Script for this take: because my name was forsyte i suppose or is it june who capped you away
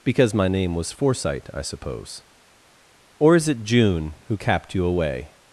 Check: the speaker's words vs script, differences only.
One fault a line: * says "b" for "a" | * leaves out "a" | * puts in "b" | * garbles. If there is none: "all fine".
all fine